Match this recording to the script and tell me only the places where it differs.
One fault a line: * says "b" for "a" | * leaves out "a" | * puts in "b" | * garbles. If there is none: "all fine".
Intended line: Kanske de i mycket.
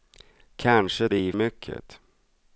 all fine